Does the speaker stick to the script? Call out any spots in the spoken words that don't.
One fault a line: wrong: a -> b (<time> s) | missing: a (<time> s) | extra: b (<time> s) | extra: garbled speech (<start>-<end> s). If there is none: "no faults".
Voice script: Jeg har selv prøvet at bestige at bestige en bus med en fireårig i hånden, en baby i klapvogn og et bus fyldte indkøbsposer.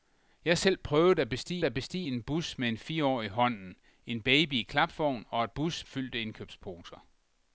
no faults